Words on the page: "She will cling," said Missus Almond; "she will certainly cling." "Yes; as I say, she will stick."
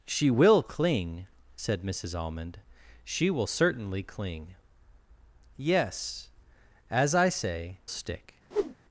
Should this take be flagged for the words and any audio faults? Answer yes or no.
yes